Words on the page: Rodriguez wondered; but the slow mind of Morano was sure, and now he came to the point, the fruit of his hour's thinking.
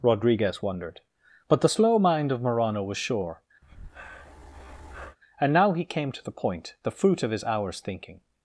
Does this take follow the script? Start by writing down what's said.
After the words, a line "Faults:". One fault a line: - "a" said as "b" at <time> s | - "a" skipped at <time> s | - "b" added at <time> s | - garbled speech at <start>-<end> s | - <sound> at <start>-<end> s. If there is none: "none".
Rodriguez wondered; but the slow mind of Morano was sure, and now he came to the point, the fruit of his hour's thinking.
Faults:
- breath at 3.6-5.2 s